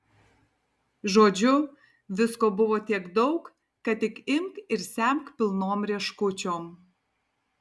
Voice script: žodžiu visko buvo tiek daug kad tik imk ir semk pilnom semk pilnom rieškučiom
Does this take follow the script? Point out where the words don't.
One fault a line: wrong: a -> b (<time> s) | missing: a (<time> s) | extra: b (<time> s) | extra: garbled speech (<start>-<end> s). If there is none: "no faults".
missing: semk pilnom (5.9 s)